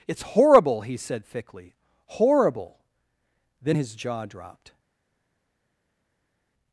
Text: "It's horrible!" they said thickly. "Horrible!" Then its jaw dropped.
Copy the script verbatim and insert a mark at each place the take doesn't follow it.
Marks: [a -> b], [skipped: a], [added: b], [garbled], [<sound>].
"It's horrible!" [they -> he] said thickly. "Horrible!" Then [its -> his] jaw dropped.